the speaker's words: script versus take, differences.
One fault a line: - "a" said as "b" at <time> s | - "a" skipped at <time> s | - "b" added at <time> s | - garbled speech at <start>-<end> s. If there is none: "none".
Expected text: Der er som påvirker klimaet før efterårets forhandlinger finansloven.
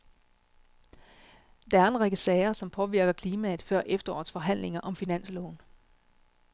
- "en række sager" added at 1.9 s
- "om" added at 4.8 s